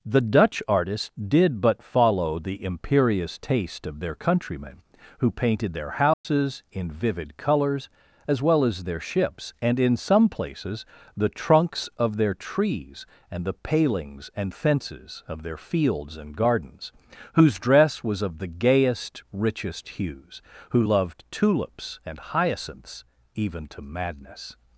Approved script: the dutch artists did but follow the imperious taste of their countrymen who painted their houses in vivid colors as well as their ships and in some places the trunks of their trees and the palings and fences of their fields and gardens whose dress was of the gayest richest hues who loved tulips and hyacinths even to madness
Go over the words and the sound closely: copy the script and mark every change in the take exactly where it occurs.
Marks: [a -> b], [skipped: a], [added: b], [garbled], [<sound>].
the dutch artists did but follow the imperious taste of their countrymen who painted their houses [dropout] in vivid colors as well as their ships and in some places the trunks of their trees and the palings and fences of their fields and gardens whose dress was of the gayest richest hues who loved tulips and hyacinths even to madness